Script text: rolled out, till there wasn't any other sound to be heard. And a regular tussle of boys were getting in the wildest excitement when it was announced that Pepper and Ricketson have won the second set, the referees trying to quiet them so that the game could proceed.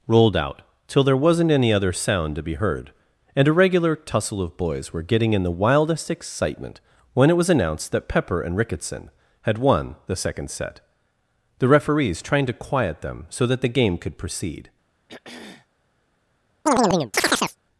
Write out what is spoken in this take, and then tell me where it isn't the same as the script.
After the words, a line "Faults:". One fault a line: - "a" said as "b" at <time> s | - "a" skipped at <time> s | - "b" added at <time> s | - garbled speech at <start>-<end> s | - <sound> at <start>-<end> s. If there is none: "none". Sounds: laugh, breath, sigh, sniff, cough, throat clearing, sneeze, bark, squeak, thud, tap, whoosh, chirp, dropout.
rolled out, till there wasn't any other sound to be heard. And a regular tussle of boys were getting in the wildest excitement when it was announced that Pepper and Ricketson had won the second set, the referees trying to quiet them so that the game could proceed.
Faults:
- "have" said as "had" at 9.4 s
- throat clearing at 15.1-15.7 s
- chirp at 16.7-17.6 s